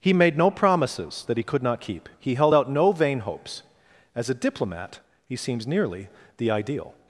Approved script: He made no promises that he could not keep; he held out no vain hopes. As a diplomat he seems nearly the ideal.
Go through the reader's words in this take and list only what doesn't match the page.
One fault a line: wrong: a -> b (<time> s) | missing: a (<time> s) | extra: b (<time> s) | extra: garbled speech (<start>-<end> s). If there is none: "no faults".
no faults